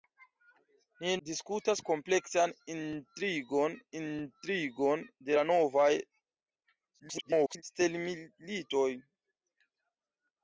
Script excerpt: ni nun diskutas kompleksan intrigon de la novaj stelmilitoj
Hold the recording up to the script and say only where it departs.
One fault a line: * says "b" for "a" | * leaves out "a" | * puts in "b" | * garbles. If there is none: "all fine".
* leaves out "nun"
* puts in "intrigon"
* garbles